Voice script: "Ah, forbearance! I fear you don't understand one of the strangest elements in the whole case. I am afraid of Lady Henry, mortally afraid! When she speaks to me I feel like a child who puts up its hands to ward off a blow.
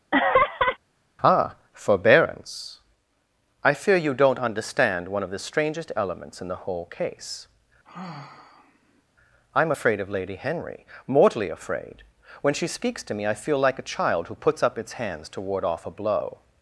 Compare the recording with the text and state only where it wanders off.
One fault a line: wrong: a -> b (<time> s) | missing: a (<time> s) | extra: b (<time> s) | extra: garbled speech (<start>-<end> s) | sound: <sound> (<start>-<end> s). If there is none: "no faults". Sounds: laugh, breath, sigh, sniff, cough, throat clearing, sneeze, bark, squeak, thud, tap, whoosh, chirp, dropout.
sound: laugh (0.1-0.8 s)
sound: sigh (7.8-9.0 s)